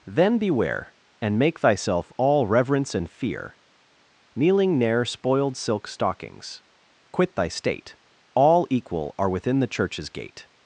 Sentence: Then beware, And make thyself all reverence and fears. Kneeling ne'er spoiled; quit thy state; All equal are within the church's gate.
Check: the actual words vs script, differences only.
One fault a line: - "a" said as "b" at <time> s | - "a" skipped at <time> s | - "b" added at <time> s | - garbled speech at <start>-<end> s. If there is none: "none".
- "fears" said as "fear" at 3.1 s
- "silk stockings" added at 5.5 s